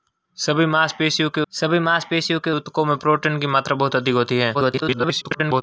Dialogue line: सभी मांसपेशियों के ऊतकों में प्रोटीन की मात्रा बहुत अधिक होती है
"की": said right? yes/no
yes